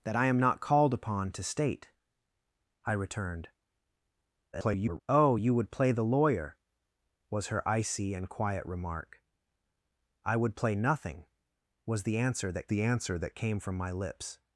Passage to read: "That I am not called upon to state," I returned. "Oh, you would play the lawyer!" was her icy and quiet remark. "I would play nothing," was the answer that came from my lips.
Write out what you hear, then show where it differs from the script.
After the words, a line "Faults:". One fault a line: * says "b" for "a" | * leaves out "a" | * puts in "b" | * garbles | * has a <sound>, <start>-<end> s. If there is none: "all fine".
"That I am not called upon to state," I returned. [garbled] "Oh, you would play the lawyer!" was her icy and quiet remark. "I would play nothing," was the answer that the answer that came from my lips.
Faults:
* garbles
* puts in "the answer that"